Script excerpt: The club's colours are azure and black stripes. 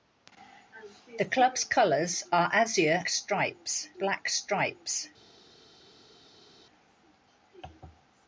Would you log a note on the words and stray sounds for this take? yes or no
yes